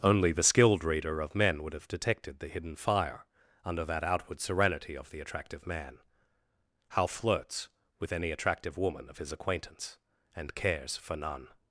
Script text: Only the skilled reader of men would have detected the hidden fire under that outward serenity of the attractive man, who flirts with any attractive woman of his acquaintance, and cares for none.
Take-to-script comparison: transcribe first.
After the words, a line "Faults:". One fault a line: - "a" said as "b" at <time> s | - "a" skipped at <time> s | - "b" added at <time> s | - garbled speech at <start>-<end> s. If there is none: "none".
Only the skilled reader of men would have detected the hidden fire under that outward serenity of the attractive man, how flirts with any attractive woman of his acquaintance, and cares for none.
Faults:
- "who" said as "how" at 6.9 s